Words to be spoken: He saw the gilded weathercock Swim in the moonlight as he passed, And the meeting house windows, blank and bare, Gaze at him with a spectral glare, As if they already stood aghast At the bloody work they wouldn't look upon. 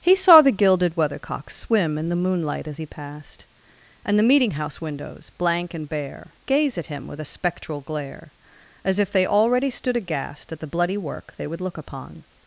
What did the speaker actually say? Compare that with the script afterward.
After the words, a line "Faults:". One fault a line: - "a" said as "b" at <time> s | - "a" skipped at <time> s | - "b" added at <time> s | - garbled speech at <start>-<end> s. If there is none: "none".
He saw the gilded weathercock Swim in the moonlight as he passed, And the meeting house windows, blank and bare, Gaze at him with a spectral glare, As if they already stood aghast At the bloody work they would look upon.
Faults:
- "wouldn't" said as "would" at 11.5 s